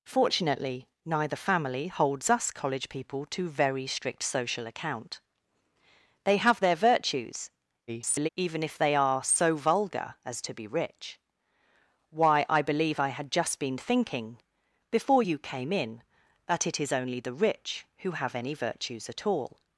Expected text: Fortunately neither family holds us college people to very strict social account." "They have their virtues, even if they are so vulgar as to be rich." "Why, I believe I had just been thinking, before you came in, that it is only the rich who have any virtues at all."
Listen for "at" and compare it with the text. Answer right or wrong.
right